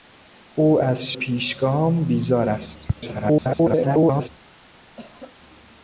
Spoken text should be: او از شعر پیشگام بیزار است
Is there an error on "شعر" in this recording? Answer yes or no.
yes